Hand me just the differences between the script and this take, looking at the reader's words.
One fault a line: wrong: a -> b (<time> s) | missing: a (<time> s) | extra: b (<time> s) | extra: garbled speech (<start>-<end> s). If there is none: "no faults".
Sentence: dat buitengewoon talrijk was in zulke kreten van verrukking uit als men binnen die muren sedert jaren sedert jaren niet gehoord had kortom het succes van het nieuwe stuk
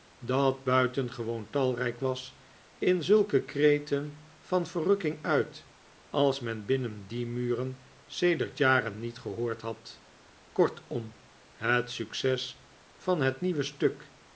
missing: sedert jaren (9.0 s)